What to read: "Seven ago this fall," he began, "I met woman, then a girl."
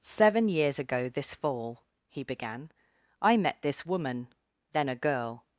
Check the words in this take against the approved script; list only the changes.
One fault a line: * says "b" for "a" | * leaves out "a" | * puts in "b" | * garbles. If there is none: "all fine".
* puts in "years"
* puts in "this"